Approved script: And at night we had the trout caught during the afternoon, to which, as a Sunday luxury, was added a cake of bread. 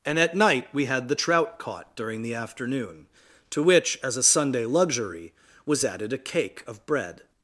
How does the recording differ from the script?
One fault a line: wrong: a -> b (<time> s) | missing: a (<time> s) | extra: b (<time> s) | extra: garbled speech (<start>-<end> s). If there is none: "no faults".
no faults